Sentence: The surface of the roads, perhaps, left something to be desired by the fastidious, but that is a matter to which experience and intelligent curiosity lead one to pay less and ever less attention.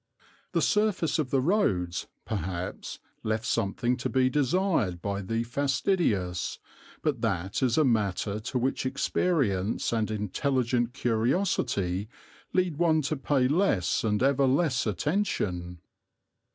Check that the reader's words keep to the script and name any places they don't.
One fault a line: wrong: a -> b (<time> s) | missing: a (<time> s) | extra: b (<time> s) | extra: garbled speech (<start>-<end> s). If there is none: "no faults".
no faults